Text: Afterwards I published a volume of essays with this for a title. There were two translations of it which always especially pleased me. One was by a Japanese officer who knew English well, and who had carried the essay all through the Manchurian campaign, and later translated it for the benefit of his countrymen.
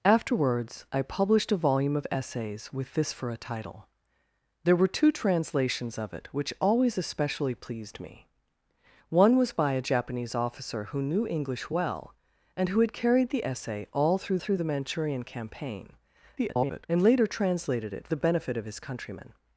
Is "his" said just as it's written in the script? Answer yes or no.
yes